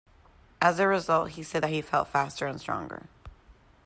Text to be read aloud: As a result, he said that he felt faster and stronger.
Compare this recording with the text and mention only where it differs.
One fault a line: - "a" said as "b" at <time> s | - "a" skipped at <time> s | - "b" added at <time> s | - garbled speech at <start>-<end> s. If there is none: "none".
none